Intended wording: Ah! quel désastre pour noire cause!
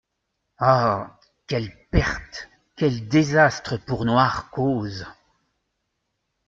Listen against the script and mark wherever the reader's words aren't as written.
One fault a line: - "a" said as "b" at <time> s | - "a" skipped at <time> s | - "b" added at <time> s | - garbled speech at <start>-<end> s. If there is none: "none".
- "quelle perte" added at 1.5 s